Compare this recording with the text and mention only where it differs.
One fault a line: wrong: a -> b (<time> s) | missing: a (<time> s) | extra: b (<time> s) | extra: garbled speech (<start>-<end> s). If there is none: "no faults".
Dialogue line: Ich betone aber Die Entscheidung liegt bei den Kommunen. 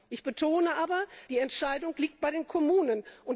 no faults